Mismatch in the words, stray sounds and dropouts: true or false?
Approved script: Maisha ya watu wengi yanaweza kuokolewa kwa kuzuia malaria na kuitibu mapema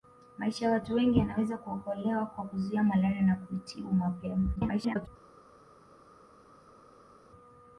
true